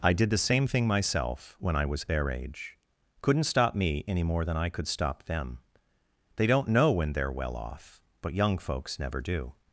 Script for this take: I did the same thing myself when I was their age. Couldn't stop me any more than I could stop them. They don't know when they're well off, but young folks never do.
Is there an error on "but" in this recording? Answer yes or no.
no